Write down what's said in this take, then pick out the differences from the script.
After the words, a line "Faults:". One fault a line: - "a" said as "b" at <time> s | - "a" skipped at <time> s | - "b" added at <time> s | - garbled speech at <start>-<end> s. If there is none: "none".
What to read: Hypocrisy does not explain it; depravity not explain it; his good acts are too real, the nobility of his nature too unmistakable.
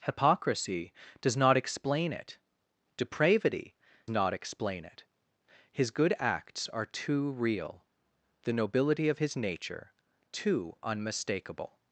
Hypocrisy does not explain it; depravity not explain it; his good acts are too real, the nobility of his nature too unmistakable.
Faults:
none